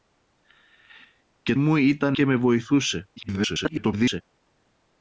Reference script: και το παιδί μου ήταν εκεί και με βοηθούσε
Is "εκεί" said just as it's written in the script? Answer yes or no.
no